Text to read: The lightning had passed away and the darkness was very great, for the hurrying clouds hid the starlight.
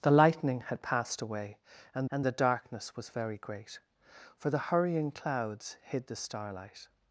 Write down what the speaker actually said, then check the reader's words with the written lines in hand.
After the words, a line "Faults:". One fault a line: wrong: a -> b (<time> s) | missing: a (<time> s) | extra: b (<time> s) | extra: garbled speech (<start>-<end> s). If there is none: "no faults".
The lightning had passed away and and the darkness was very great, for the hurrying clouds hid the starlight.
Faults:
extra: and (2.1 s)